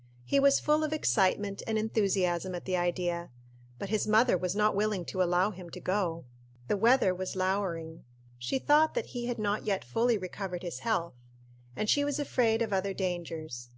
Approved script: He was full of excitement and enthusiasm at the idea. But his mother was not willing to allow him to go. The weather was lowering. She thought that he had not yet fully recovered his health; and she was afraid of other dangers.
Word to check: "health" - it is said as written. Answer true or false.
true